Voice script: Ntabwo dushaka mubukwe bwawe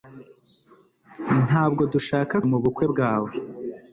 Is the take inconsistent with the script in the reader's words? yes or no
no